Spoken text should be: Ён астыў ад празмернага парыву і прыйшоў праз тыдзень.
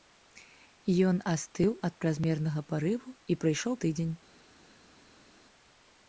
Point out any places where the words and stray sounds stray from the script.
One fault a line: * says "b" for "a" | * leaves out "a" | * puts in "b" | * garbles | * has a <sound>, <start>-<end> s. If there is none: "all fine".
* leaves out "праз"